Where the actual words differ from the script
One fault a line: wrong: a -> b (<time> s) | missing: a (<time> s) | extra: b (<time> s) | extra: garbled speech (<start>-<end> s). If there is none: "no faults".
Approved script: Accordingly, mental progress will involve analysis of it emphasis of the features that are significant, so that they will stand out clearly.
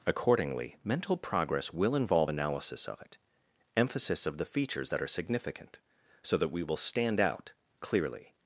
wrong: they -> we (6.5 s)